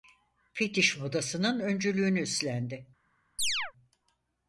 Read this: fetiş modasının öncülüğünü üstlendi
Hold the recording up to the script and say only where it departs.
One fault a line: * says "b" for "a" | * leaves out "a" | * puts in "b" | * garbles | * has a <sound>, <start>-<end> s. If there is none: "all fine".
* has a chirp, 3.4-3.7 s